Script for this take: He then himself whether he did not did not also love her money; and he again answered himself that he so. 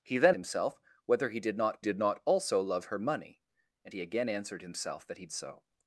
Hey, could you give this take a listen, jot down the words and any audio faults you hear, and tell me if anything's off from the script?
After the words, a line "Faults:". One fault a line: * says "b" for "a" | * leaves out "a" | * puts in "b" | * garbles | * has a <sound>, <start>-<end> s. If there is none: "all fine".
He then himself whether he did not did not also love her money; and he again answered himself that he so.
Faults:
all fine